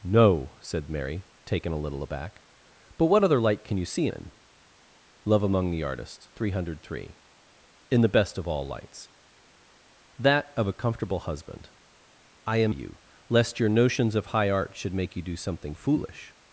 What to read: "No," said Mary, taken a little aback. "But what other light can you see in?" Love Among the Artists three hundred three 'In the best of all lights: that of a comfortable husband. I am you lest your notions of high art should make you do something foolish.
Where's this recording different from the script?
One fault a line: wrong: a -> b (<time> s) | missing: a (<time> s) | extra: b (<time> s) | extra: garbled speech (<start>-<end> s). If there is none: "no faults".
no faults